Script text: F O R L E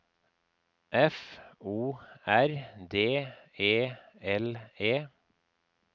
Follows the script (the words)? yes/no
no